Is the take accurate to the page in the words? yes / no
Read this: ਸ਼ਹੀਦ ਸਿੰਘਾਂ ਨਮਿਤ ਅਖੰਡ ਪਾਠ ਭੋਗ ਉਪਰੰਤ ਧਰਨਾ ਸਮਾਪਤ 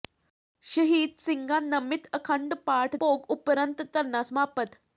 yes